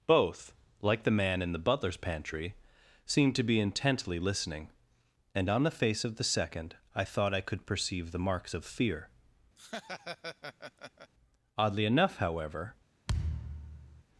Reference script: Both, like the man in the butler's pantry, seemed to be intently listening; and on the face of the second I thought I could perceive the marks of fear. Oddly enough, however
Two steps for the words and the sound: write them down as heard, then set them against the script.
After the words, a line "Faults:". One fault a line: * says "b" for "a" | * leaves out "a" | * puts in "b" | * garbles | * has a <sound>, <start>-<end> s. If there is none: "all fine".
Both, like the man in the butler's pantry, seemed to be intently listening; and on the face of the second I thought I could perceive the marks of fear. Oddly enough, however
Faults:
* has a laugh, 9.6-11.1 s
* has a thud, 13.1-14.0 s